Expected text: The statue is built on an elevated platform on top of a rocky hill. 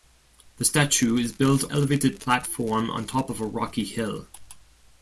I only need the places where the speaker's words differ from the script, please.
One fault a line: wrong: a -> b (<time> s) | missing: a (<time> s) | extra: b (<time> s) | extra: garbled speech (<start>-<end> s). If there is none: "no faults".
missing: on an (1.7 s)